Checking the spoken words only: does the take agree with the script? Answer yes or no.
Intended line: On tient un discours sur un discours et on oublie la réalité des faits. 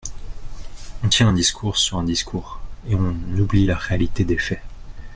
yes